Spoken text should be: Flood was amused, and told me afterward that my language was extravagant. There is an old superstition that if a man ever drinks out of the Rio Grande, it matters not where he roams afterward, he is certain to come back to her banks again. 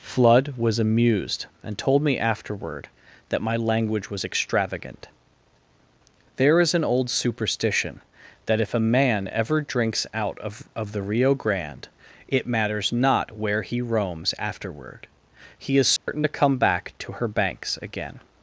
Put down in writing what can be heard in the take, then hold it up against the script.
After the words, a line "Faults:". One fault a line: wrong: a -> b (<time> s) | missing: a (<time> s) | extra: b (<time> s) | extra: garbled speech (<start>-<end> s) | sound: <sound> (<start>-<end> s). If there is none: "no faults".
Flood was amused, and told me afterward that my language was extravagant. There is an old superstition that if a man ever drinks out of of the Rio Grande, it matters not where he roams afterward, he is certain to come back to her banks again.
Faults:
extra: of (10.8 s)
sound: dropout (16.0-16.1 s)